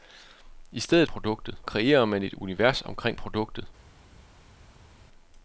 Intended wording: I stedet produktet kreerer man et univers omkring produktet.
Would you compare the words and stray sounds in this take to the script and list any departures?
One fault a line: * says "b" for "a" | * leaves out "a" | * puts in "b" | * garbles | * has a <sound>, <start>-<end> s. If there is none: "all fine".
all fine